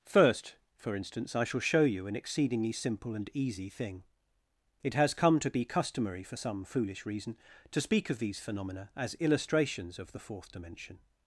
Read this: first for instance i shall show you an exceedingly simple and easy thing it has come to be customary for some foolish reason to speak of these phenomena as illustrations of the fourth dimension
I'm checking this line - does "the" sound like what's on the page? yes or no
yes